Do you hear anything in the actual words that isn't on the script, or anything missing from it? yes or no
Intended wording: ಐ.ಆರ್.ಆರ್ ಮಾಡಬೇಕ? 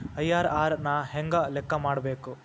yes